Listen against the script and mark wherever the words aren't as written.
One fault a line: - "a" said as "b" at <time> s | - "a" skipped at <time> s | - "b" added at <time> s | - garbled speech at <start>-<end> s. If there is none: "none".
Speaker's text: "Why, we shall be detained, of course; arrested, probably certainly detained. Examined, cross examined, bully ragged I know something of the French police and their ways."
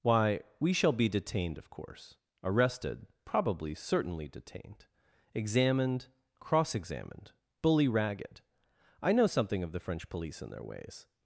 none